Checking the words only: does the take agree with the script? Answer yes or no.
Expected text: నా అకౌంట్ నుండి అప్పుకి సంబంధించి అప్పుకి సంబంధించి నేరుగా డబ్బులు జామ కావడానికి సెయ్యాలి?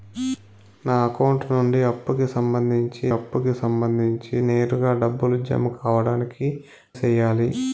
yes